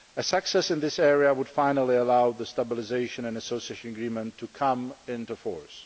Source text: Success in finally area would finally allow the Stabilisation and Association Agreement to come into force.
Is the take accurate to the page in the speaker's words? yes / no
no